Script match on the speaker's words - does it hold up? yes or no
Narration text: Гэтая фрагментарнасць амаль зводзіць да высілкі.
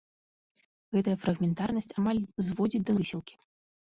yes